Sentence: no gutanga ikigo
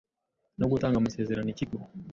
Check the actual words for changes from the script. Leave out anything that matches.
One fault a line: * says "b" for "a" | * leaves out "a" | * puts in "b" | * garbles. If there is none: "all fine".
* puts in "amasezerano"